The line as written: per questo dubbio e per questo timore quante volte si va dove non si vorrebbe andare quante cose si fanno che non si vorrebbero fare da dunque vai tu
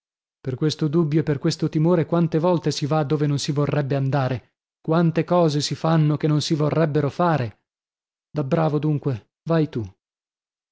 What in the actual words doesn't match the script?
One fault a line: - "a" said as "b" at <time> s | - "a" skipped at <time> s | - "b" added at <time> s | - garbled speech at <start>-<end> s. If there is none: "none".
- "bravo" added at 8.4 s